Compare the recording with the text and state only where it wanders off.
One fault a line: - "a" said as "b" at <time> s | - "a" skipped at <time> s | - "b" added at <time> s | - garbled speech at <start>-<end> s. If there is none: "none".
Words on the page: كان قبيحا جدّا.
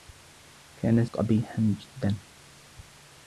none